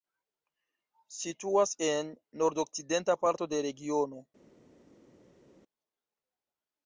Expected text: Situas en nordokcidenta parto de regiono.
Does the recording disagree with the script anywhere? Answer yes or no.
no